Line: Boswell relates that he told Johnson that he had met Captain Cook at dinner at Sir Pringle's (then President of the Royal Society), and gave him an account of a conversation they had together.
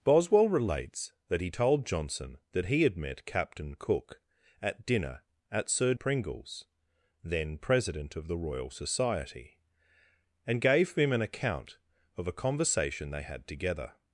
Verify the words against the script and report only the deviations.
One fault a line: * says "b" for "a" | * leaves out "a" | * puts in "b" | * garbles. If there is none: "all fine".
all fine